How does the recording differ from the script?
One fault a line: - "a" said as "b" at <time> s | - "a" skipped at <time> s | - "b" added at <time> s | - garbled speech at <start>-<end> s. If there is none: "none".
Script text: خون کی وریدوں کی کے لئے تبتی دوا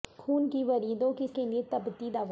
none